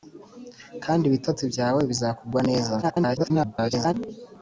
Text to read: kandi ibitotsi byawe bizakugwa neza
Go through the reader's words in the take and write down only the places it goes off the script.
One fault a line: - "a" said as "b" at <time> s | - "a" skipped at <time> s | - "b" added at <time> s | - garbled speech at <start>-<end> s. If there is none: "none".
- garbled speech at 2.8-3.9 s